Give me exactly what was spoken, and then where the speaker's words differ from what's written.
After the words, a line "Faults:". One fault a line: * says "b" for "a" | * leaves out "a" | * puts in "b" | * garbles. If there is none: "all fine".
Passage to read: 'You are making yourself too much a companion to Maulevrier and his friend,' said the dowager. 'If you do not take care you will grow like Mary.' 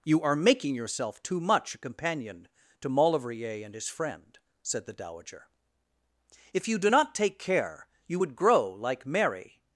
'You are making yourself too much a companion to Maulevrier and his friend,' said the dowager. 'If you do not take care you would grow like Mary.'
Faults:
* says "would" for "will"